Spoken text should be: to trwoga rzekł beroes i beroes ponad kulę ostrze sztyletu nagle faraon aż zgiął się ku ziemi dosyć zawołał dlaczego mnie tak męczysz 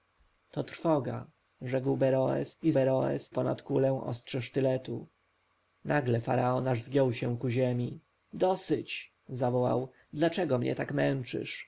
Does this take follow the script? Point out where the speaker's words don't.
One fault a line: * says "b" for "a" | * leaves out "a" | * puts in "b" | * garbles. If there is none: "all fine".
all fine